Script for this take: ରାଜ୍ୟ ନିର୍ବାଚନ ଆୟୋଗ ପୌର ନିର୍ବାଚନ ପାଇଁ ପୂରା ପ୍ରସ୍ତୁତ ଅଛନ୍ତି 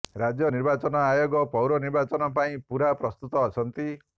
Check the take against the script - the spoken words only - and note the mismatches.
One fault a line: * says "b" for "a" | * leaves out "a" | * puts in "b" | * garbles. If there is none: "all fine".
all fine